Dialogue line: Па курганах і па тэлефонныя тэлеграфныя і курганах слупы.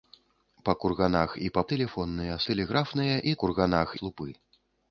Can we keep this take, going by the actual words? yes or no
yes